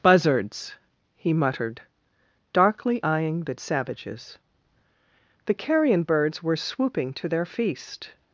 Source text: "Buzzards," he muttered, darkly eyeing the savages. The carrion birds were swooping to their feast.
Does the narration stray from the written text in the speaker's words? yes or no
no